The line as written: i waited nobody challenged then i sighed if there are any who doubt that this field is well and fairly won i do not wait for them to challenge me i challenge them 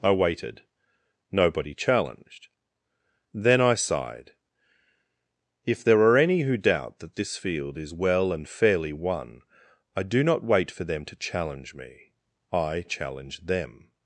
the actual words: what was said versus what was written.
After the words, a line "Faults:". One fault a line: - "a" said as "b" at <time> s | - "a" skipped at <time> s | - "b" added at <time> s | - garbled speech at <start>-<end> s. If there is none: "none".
i waited nobody challenged then i sighed if there are any who doubt that this field is well and fairly won i do not wait for them to challenge me i challenge them
Faults:
none